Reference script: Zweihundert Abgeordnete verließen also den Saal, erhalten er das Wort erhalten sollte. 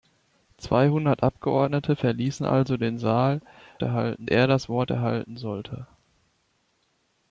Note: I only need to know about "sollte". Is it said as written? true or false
true